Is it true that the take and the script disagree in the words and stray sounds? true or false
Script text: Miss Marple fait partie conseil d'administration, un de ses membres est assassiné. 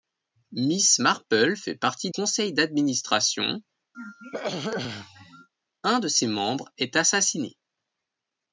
true